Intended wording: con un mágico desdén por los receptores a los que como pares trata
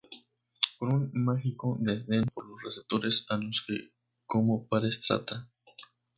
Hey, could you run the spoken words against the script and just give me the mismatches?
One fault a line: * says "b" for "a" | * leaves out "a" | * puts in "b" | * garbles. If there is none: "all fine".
all fine